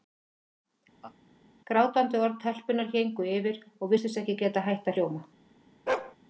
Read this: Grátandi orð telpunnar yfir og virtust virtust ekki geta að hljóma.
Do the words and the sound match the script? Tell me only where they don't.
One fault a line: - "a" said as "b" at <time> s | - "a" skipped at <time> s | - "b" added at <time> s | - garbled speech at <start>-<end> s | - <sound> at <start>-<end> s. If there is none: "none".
- laugh at 1.0-1.2 s
- "héngu" added at 3.0 s
- "virtust" skipped at 4.2 s
- "hætt" added at 4.7 s
- bark at 5.9-6.2 s